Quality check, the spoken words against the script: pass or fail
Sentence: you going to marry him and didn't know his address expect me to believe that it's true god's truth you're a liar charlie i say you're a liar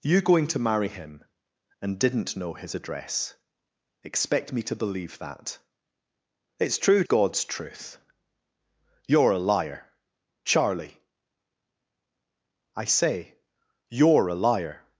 pass